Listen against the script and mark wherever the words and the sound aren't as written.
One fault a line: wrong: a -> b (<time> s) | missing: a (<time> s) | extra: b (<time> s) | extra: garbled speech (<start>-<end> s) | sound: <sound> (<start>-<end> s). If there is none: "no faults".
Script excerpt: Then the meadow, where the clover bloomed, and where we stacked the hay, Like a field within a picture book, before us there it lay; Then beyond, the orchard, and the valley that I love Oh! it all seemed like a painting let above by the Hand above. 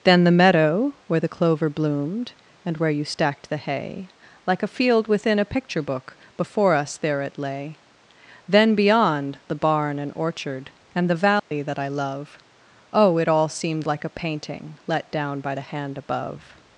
wrong: we -> you (2.9 s)
extra: barn and (9.6 s)
sound: dropout (11.4-11.5 s)
wrong: above -> down (15.1 s)